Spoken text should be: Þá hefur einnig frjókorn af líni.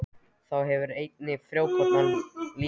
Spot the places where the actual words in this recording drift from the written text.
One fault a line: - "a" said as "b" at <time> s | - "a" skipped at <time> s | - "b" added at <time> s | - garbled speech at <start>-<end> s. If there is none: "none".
none